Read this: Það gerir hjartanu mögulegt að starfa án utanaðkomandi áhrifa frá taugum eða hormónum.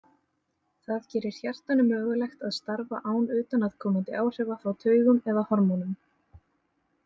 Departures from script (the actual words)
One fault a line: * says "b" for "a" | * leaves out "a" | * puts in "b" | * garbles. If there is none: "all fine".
all fine